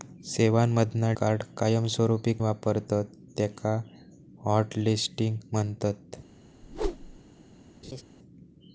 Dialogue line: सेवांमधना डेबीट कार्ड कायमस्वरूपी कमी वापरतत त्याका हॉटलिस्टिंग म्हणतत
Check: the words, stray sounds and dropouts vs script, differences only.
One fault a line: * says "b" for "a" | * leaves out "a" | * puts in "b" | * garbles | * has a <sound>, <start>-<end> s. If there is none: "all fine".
* leaves out "डेबीट"
* leaves out "कमी"
* has a whoosh, 6.6-7.2 s
* has a laugh, 7.8-8.0 s